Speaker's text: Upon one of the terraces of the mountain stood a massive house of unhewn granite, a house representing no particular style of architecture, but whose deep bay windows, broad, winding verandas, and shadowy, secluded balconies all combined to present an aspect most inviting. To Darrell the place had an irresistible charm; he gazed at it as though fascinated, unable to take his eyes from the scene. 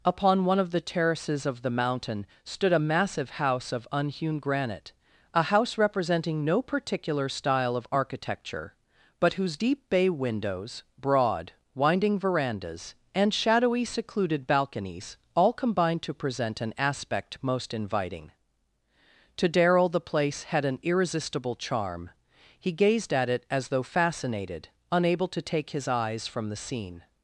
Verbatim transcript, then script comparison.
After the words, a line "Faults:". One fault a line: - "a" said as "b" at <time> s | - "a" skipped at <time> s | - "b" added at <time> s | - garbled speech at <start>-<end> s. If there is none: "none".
Upon one of the terraces of the mountain stood a massive house of unhewn granite, a house representing no particular style of architecture, but whose deep bay windows, broad, winding verandas, and shadowy, secluded balconies all combined to present an aspect most inviting. To Darrell the place had an irresistible charm; he gazed at it as though fascinated, unable to take his eyes from the scene.
Faults:
none